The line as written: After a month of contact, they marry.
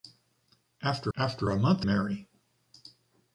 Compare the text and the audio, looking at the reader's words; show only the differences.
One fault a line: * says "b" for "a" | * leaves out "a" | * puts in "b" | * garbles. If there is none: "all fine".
* puts in "after"
* leaves out "of contact they"